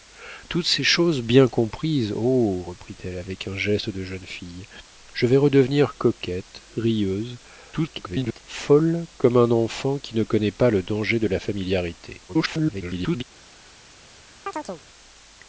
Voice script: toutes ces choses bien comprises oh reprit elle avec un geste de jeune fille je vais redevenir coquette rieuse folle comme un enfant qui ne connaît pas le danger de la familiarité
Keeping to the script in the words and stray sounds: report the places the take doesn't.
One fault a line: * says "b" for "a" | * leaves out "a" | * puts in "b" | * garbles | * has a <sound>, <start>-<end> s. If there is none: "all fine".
* garbles
* garbles
* has a chirp, 14.5-14.8 s